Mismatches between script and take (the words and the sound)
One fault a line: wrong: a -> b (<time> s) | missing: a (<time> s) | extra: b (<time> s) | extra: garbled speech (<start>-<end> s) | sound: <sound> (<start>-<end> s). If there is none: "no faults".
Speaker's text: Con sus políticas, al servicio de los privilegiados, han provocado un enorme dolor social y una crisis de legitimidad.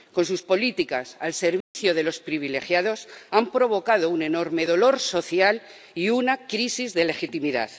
sound: dropout (1.6-1.7 s)